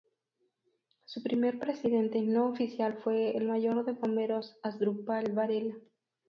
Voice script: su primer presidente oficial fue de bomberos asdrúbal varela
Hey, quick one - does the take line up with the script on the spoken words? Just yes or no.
no